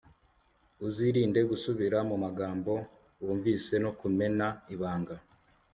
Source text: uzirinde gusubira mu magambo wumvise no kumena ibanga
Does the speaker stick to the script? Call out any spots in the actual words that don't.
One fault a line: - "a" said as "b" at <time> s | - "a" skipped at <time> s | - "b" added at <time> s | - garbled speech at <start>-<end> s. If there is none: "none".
none